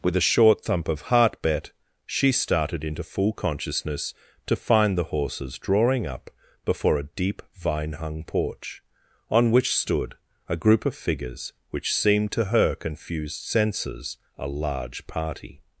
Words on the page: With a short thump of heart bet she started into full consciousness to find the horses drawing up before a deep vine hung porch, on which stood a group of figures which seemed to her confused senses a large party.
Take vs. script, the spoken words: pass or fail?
pass